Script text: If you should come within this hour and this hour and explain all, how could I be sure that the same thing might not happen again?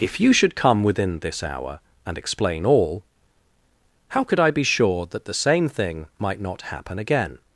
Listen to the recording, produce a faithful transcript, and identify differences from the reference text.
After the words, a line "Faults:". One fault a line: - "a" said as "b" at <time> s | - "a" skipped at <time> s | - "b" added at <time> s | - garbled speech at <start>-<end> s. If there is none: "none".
If you should come within this hour and explain all, how could I be sure that the same thing might not happen again?
Faults:
- "this hour and" skipped at 2.2 s